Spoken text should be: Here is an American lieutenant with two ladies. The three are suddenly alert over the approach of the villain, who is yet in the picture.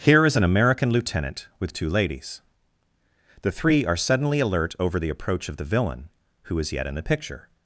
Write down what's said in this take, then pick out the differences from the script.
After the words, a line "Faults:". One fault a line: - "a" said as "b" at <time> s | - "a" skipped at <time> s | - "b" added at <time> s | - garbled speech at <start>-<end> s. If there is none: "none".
Here is an American lieutenant with two ladies. The three are suddenly alert over the approach of the villain, who is yet in the picture.
Faults:
none